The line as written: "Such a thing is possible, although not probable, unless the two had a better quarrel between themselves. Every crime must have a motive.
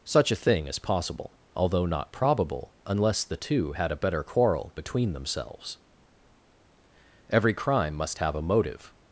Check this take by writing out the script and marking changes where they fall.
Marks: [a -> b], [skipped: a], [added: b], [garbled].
"Such a thing is possible, although not probable, unless the two had a better quarrel between themselves. Every crime must have a motive.